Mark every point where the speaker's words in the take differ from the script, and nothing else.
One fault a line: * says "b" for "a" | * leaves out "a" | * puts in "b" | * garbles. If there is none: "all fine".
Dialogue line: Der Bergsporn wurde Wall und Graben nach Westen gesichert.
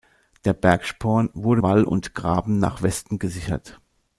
all fine